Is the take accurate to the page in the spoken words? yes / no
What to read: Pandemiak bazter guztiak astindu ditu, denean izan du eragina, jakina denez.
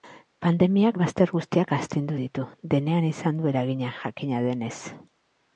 yes